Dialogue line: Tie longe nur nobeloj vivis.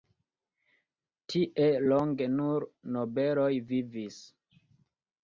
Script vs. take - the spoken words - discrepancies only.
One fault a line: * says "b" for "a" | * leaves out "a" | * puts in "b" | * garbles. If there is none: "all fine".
all fine